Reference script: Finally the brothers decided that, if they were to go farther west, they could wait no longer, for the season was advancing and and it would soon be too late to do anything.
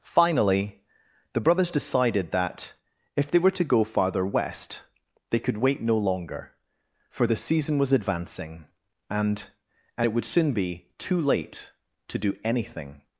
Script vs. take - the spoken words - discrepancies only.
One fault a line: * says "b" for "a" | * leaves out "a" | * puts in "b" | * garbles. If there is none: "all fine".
all fine